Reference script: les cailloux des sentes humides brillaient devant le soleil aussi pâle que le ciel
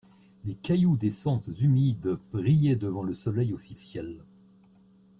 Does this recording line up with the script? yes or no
no